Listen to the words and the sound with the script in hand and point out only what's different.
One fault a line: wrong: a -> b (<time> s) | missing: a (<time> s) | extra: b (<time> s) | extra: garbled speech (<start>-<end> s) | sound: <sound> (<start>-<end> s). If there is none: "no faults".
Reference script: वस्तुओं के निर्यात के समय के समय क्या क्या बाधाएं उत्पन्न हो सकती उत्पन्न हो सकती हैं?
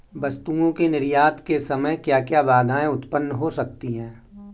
missing: के समय (1.9 s)
missing: उत्पन्न हो सकती (3.9 s)